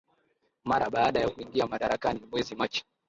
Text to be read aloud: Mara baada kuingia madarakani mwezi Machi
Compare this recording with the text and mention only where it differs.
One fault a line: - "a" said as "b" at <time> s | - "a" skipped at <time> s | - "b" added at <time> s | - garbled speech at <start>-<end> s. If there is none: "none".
- "ya" added at 1.2 s